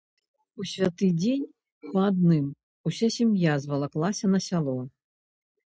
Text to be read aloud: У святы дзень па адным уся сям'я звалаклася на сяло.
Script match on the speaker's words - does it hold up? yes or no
yes